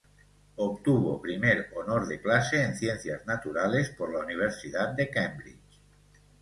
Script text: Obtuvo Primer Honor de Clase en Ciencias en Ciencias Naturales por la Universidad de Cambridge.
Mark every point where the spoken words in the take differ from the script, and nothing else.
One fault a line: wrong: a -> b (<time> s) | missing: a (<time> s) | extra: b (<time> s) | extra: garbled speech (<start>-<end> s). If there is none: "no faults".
missing: en Ciencias (3.2 s)